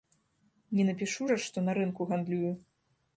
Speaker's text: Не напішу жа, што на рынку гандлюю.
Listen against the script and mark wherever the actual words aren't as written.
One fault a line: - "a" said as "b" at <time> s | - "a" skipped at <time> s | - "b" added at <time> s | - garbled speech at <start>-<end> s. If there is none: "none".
none